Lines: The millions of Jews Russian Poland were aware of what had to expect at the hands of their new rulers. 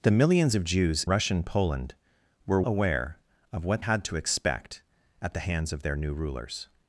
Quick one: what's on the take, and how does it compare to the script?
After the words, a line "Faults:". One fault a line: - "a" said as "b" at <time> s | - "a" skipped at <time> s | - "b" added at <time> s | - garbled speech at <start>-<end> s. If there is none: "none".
The millions of Jews Russian Poland were aware of what had to expect at the hands of their new rulers.
Faults:
none